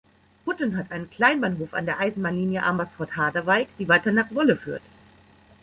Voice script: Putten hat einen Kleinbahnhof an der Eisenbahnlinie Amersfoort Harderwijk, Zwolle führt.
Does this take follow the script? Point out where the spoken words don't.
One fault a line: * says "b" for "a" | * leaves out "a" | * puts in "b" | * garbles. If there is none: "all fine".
* puts in "die weiter nach"